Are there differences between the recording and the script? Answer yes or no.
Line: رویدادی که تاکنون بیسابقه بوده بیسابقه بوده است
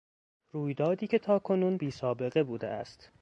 yes